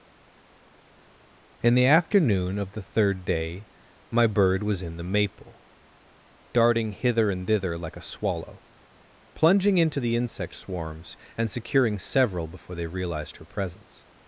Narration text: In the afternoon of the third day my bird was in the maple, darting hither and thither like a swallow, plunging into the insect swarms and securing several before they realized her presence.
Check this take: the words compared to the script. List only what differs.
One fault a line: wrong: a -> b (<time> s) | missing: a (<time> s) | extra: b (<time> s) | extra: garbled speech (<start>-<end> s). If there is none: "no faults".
no faults